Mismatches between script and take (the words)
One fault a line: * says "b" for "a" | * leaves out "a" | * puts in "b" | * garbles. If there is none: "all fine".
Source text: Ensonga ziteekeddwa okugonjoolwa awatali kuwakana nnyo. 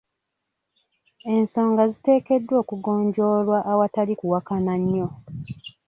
all fine